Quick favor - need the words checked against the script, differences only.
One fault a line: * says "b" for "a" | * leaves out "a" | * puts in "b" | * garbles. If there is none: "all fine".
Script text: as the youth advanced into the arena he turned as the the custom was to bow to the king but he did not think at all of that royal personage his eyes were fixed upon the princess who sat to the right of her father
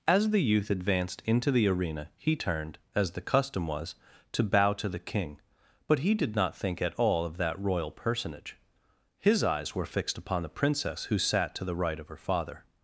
* leaves out "the"